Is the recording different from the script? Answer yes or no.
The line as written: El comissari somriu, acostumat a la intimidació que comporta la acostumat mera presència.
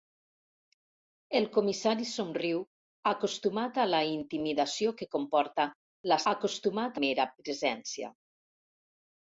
no